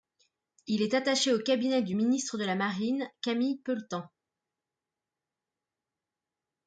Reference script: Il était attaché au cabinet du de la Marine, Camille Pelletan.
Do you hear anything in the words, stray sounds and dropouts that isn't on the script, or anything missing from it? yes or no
yes